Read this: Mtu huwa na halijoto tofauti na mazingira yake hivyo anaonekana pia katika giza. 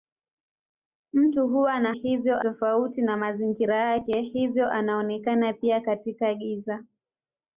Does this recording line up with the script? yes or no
no